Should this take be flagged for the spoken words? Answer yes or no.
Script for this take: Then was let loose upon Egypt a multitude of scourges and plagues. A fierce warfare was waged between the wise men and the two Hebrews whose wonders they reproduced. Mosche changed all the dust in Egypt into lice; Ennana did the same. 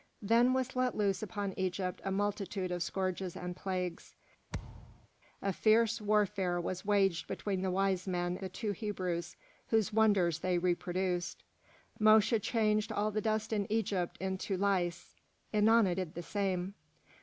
yes